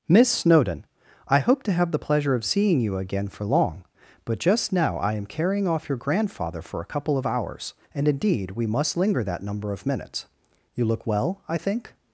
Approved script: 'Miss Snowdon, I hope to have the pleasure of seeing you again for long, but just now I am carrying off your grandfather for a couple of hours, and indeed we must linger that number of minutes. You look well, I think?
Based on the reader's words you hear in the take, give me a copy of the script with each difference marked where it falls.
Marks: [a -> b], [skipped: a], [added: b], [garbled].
'Miss Snowdon, I hope to have the pleasure of seeing you again for long, but just now I am carrying off your grandfather for a couple of hours, and indeed we must linger that number of minutes. You look well, I think?